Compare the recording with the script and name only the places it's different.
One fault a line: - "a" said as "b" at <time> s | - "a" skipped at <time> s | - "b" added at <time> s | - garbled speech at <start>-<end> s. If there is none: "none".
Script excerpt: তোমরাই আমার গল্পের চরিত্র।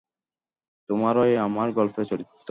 none